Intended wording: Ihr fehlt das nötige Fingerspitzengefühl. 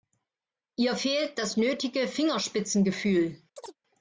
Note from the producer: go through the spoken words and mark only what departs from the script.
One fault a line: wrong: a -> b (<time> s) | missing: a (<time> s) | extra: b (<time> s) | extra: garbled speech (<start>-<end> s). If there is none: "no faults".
no faults